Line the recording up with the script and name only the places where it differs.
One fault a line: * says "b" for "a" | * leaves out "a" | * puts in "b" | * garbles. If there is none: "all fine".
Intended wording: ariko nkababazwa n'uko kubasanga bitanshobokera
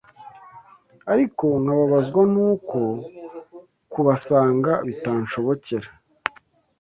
all fine